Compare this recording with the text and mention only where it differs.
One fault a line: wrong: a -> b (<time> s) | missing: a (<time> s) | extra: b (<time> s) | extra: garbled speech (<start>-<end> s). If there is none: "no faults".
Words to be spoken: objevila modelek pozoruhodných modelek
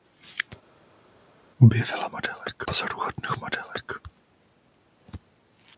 no faults